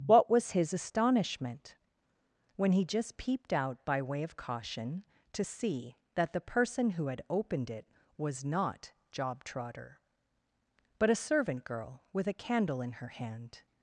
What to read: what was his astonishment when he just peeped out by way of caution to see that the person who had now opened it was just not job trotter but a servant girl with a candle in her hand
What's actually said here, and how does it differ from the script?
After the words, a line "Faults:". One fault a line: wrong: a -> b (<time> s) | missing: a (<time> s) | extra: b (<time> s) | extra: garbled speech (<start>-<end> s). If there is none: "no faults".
what was his astonishment when he just peeped out by way of caution to see that the person who had opened it was not job trotter but a servant girl with a candle in her hand
Faults:
missing: now (7.2 s)
missing: just (8.4 s)